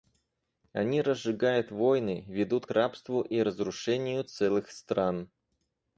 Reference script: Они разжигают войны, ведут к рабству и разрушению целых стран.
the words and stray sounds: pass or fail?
fail